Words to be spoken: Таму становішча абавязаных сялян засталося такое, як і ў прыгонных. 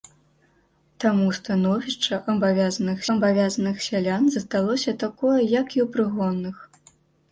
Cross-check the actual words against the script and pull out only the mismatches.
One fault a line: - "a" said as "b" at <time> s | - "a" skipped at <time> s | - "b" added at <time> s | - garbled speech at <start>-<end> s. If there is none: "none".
- "абавязаных" added at 3.2 s